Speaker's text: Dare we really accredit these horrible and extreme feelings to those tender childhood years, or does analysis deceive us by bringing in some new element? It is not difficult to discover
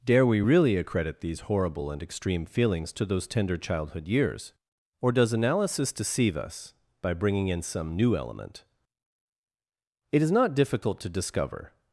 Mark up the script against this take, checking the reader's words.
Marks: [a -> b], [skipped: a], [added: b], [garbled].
Dare we really accredit these horrible and extreme feelings to those tender childhood years, or does analysis deceive us by bringing in some new element? It is not difficult to discover